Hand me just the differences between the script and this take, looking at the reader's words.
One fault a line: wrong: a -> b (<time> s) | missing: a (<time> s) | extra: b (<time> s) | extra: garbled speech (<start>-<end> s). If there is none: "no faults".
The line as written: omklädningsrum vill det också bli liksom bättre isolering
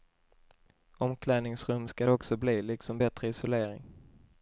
wrong: vill -> ska (1.8 s)